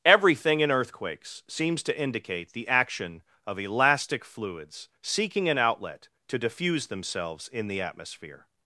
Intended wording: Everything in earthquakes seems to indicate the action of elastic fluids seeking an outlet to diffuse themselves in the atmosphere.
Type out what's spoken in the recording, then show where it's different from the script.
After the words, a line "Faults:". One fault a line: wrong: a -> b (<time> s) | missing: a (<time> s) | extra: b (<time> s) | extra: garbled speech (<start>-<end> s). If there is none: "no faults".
Everything in earthquakes seems to indicate the action of elastic fluids seeking an outlet to diffuse themselves in the atmosphere.
Faults:
no faults